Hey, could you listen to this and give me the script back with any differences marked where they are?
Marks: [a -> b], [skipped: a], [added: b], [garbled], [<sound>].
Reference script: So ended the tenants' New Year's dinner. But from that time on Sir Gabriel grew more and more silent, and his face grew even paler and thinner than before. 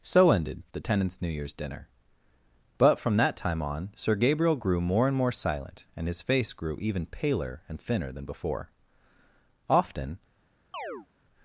So ended the tenants' New Year's dinner. But from that time on Sir Gabriel grew more and more silent, and his face grew even paler and thinner than before. [added: Often] [chirp]